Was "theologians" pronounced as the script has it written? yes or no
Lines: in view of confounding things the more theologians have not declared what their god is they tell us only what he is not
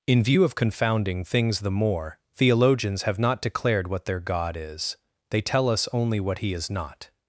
yes